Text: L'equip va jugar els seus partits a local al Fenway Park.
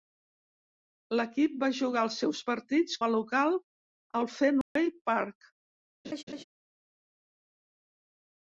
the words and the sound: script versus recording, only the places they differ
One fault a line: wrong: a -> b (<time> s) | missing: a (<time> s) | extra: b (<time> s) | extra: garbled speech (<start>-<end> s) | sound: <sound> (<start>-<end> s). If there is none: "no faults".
sound: dropout (4.6-4.8 s)
sound: laugh (6.0-6.4 s)